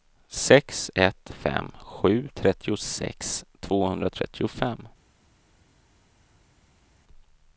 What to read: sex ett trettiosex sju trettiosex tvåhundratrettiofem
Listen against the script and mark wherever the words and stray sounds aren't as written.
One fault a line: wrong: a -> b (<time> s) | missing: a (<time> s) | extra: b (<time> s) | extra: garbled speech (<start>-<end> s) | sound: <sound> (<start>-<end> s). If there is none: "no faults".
wrong: trettiosex -> fem (1.3 s)